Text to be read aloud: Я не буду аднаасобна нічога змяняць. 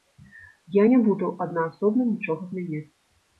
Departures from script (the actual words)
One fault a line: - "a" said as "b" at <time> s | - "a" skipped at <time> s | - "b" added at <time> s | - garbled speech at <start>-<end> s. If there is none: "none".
none